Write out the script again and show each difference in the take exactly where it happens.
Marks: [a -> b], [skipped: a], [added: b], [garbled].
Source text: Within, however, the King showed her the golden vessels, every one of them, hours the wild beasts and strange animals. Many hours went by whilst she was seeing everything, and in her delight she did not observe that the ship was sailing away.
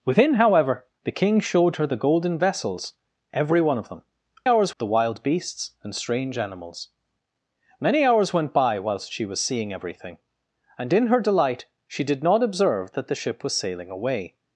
Within, however, the King showed her the golden vessels, every one of them, hours the wild beasts and strange animals. Many hours went by whilst she was seeing everything, and in her delight she did not observe that the ship was sailing away.